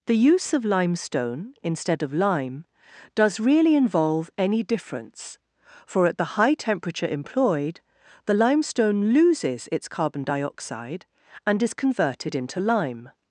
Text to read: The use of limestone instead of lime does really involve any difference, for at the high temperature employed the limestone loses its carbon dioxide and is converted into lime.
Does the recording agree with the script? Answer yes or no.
yes